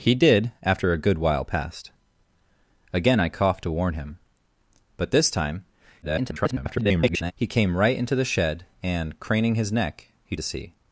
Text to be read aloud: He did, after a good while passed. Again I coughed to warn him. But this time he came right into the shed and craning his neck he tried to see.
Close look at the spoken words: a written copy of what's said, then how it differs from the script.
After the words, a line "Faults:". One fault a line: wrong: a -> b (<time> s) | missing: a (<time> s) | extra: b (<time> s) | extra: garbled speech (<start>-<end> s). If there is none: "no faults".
He did, after a good while passed. Again I coughed to warn him. But this time [garbled] he came right into the shed and craning his neck he to see.
Faults:
extra: garbled speech (6.0-7.3 s)
missing: tried (10.4 s)